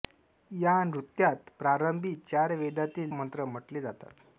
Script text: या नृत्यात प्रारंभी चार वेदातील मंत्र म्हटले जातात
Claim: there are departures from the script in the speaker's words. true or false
false